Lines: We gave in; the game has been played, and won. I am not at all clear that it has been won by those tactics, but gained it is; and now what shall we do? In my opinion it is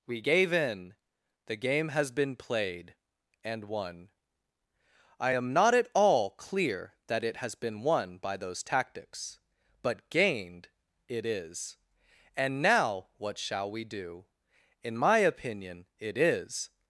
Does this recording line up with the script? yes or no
yes